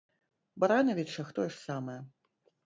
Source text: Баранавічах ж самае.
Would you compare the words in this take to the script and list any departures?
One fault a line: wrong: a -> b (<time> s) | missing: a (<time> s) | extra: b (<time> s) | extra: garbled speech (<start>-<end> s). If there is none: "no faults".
extra: тое (1.4 s)